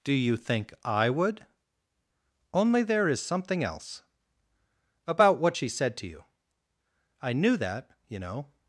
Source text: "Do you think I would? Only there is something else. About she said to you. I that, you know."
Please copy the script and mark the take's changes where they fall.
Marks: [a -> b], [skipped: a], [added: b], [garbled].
"Do you think I would? Only there is something else. About [added: what] she said to you. I [added: knew] that, you know."